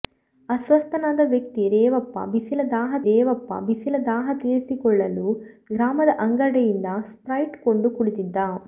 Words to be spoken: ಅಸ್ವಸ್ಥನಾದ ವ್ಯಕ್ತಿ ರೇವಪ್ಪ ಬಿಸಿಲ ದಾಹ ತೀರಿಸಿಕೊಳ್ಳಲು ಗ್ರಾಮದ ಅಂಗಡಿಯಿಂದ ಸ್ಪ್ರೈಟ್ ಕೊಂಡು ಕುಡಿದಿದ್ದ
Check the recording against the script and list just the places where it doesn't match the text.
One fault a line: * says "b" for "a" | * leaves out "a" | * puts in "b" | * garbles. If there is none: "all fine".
* puts in "ರೇವಪ್ಪ ಬಿಸಿಲ ದಾಹ"